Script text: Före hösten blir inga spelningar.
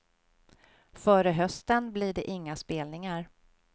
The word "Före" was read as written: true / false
true